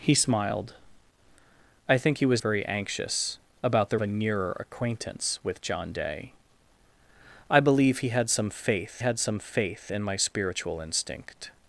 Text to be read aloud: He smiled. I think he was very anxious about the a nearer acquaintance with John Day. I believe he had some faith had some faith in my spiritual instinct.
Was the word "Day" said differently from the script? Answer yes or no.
no